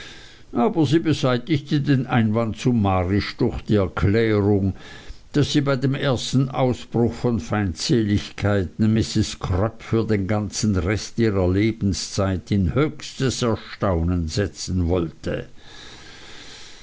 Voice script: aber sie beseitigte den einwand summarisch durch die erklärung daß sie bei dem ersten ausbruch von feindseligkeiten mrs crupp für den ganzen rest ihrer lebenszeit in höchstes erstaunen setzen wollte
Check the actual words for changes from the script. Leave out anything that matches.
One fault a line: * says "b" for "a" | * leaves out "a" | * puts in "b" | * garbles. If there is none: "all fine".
all fine